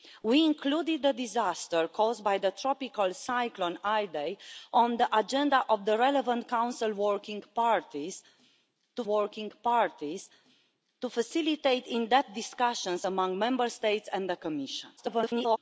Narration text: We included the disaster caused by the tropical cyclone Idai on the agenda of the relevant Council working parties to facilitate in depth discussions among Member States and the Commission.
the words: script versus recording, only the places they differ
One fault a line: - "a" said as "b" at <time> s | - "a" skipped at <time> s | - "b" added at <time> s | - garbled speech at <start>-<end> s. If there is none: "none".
- "working parties to" added at 9.0 s
- garbled speech at 15.0-15.6 s